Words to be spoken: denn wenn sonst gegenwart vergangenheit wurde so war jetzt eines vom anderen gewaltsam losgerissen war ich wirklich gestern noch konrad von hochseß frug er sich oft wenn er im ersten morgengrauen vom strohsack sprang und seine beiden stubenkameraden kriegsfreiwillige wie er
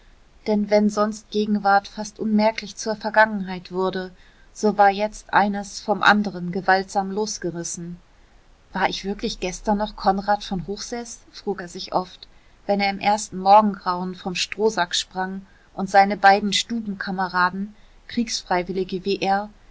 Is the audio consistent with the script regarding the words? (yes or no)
no